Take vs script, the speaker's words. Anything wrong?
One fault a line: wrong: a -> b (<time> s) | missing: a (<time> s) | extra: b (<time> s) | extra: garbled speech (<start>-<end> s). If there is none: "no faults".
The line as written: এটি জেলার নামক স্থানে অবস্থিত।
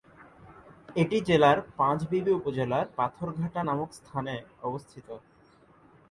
extra: পাঁচবিবি উপজেলার পাথরঘাটা (1.8 s)